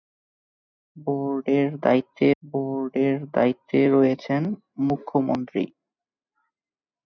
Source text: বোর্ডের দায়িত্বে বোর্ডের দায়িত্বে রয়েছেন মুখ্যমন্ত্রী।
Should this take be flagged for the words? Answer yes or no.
no